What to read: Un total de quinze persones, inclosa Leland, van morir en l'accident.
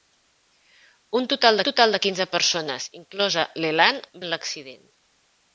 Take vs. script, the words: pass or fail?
fail